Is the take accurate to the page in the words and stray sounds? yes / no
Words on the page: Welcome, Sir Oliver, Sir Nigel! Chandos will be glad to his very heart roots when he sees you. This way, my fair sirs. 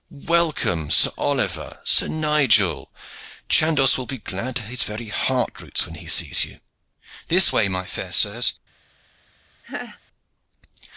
no